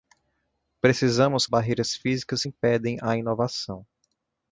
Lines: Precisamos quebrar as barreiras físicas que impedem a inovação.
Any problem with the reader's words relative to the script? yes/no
yes